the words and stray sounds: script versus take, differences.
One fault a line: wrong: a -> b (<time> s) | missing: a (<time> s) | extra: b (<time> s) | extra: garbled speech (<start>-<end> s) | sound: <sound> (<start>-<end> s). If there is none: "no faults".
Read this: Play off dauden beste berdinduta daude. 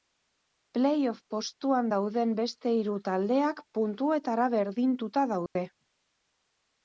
extra: postuan (1.3 s)
extra: hiru taldeak puntuetara (2.8 s)
sound: dropout (5.5-5.6 s)